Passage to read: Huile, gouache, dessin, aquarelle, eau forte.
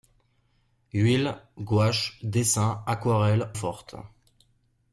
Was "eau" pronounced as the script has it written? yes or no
no